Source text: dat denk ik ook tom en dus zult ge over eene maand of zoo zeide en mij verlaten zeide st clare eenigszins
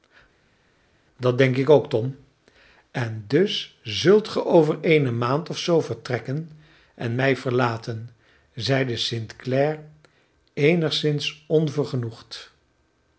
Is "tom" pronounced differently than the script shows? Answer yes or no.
no